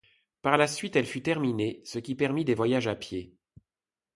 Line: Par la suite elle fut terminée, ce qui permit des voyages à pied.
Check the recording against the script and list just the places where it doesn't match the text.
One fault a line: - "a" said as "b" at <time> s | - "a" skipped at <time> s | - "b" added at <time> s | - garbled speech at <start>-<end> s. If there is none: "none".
none